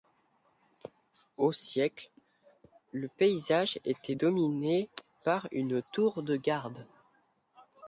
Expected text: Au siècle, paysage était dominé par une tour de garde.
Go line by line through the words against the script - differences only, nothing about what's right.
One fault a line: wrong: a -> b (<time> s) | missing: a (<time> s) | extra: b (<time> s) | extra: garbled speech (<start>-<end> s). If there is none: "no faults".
extra: le (2.9 s)